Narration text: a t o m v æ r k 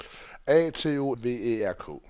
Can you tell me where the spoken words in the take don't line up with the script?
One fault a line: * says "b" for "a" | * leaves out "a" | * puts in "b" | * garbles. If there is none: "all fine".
* leaves out "m"